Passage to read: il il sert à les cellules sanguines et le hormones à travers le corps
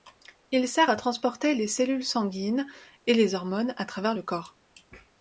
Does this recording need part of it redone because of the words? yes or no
yes